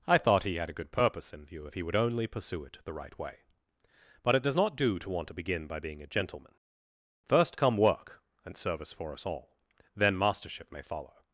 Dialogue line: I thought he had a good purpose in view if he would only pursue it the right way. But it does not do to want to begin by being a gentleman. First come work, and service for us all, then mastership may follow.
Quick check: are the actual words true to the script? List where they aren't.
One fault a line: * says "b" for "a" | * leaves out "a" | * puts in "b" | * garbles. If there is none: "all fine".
all fine